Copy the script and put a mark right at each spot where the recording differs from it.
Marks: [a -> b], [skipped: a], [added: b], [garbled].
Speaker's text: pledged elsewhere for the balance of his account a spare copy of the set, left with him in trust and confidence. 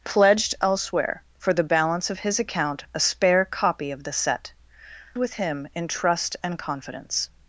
pledged elsewhere for the balance of his account a spare copy of the set, [skipped: left] with him in trust and confidence.